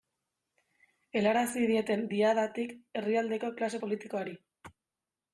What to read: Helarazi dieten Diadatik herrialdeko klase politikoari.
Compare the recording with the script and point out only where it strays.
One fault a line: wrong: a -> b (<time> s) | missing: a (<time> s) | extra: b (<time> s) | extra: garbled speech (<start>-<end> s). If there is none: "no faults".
no faults